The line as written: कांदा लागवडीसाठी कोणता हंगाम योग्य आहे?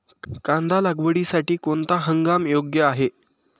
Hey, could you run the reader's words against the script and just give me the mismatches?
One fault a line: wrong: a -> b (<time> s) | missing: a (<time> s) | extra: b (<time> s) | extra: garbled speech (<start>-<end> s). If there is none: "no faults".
no faults